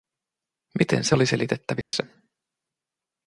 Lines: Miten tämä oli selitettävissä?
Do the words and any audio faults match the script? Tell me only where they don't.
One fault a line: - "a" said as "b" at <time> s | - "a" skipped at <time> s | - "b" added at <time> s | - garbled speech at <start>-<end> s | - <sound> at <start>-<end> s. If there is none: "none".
- "tämä" said as "se" at 1.0 s
- dropout at 1.8-1.9 s